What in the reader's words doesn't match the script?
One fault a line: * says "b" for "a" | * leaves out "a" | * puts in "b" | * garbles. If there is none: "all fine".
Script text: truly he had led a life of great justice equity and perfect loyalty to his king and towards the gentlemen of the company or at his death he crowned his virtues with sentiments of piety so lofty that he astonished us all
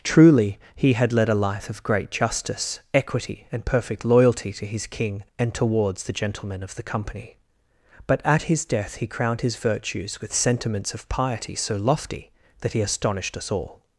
* says "but" for "or"